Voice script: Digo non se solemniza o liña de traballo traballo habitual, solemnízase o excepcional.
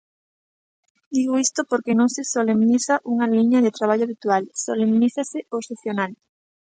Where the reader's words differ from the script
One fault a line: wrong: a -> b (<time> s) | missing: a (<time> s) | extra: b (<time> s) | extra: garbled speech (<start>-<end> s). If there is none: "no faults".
extra: isto porque (1.4 s)
wrong: o -> unha (3.1 s)
missing: traballo (4.1 s)